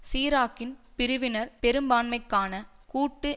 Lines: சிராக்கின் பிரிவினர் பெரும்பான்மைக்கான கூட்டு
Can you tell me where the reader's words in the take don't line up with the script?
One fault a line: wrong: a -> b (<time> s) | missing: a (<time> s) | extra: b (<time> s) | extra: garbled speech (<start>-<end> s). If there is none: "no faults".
no faults